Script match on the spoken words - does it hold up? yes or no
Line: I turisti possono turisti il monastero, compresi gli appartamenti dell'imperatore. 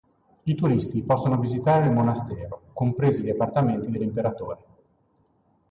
no